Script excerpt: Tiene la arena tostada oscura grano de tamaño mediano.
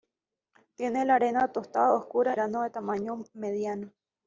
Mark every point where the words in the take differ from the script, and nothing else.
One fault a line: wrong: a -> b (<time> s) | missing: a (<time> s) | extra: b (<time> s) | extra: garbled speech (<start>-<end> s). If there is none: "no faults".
no faults